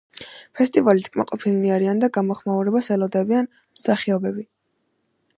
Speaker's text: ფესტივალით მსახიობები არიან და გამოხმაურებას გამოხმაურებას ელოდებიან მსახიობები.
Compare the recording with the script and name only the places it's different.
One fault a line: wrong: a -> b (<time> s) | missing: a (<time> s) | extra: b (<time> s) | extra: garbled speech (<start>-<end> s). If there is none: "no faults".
wrong: მსახიობები -> კმაყოფილნი (1.2 s)
missing: გამოხმაურებას (2.9 s)